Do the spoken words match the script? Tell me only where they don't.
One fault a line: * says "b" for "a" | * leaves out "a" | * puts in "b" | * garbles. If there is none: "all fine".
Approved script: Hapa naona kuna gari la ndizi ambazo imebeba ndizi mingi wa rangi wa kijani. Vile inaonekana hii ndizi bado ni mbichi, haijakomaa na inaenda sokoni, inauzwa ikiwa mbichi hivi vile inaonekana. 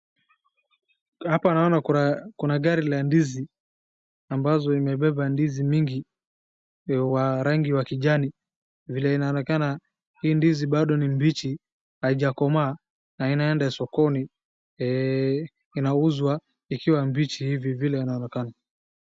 all fine